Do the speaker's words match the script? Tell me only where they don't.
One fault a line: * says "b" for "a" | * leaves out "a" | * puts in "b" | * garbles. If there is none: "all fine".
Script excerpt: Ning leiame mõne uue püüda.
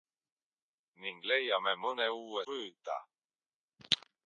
all fine